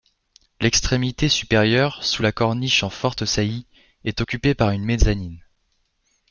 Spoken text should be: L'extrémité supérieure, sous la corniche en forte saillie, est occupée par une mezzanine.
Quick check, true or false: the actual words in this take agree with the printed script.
true